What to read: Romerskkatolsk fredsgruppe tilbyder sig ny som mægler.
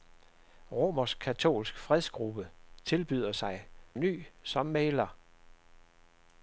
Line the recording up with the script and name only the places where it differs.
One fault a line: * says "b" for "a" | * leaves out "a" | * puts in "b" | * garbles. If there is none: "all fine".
all fine